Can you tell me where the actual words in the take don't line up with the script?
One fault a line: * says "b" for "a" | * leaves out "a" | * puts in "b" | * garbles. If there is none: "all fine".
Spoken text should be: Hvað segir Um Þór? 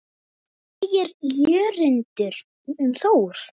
* puts in "Jörundur"